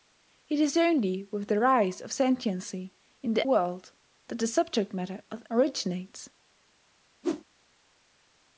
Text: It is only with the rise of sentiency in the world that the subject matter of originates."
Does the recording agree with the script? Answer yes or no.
yes